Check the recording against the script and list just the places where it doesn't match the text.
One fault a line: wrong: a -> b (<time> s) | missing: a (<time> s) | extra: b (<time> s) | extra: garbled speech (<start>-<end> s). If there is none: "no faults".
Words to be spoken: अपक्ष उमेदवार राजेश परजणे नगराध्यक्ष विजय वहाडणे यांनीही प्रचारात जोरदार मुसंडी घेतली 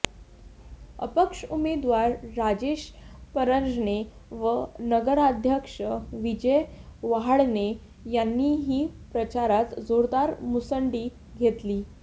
extra: व (4.3 s)